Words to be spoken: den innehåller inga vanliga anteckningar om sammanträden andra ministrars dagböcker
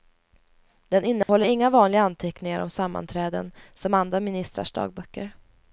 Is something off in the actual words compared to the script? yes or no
yes